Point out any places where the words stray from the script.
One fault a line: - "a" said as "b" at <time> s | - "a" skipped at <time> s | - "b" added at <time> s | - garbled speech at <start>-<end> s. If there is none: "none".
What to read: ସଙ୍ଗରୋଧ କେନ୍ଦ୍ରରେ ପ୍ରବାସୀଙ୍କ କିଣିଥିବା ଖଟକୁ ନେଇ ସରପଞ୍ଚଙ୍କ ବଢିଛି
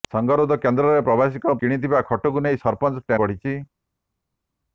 none